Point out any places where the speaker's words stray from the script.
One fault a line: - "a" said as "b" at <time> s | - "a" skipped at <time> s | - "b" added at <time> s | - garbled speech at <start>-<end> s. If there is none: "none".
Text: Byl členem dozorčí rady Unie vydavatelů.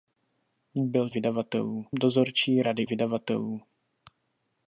- "členem" said as "vydavatelů" at 1.1 s
- "Unie" skipped at 2.9 s